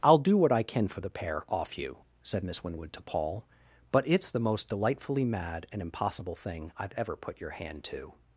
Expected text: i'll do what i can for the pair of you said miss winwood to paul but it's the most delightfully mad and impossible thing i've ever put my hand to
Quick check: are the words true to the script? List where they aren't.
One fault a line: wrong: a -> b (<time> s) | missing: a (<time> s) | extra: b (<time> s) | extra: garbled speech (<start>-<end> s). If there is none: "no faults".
wrong: of -> off (1.5 s)
wrong: my -> your (7.4 s)